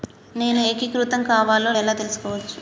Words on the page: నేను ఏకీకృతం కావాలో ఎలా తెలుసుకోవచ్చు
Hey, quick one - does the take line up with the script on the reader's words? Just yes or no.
yes